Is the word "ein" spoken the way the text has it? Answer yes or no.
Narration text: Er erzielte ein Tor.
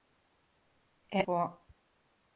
no